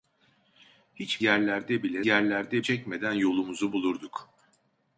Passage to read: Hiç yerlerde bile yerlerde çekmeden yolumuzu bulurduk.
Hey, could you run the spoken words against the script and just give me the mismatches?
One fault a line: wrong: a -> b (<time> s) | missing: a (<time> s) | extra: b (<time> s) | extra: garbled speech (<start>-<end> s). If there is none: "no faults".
no faults